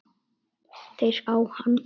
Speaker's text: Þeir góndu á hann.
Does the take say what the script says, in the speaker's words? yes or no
no